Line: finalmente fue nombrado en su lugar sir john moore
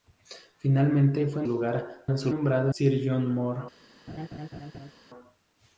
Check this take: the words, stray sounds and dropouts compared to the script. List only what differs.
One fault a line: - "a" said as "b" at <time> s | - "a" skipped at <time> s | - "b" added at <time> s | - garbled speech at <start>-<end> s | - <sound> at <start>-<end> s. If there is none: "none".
- "nombrado" said as "lugar" at 1.5 s
- "lugar" said as "nombrado" at 2.3 s
- laugh at 4.1-4.9 s